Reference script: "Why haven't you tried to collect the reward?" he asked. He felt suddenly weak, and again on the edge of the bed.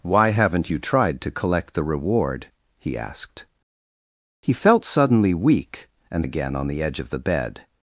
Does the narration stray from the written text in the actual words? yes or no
no